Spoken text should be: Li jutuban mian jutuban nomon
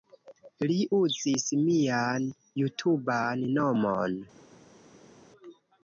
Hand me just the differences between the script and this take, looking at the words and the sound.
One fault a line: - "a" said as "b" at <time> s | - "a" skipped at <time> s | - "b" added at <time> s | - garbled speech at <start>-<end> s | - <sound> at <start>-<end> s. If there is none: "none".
- "jutuban" said as "uzis" at 1.0 s